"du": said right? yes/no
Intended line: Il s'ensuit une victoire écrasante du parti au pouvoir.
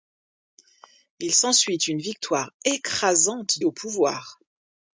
no